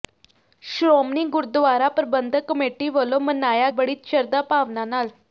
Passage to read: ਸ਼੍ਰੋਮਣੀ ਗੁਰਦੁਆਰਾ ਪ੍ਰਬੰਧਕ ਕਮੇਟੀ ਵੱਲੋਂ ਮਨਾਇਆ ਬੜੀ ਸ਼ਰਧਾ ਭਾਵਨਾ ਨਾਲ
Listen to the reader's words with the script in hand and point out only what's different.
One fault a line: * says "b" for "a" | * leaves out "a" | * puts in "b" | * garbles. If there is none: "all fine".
all fine